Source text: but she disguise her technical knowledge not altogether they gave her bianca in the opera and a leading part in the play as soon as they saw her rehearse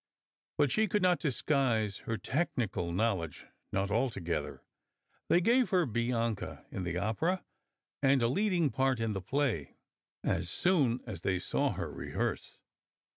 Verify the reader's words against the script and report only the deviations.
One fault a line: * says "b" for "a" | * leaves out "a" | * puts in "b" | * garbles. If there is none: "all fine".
* puts in "could not"